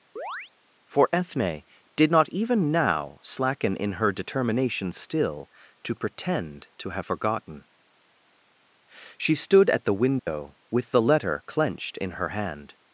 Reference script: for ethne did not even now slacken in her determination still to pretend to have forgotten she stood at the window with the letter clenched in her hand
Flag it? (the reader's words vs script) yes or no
no